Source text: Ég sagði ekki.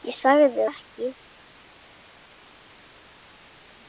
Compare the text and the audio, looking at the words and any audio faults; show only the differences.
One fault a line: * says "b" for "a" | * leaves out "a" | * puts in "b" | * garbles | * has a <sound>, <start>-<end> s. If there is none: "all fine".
all fine